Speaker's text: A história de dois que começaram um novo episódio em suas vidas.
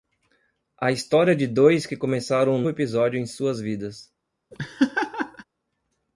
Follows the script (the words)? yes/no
no